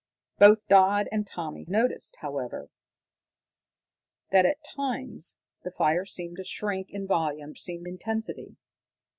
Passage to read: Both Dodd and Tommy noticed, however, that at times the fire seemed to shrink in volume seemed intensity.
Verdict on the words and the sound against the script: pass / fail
pass